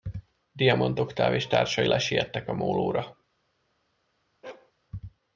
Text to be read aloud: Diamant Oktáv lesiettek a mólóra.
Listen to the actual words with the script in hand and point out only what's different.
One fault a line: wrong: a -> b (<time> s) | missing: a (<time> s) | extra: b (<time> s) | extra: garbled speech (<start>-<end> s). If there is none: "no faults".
extra: és társai (1.3 s)